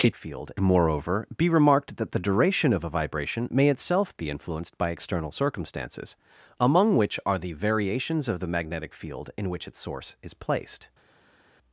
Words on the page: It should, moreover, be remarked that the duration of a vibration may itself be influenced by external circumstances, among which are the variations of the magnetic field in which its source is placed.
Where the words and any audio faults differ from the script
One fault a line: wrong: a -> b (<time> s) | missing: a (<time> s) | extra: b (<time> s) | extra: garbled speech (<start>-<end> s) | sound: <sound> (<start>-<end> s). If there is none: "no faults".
wrong: should -> field (0.1 s)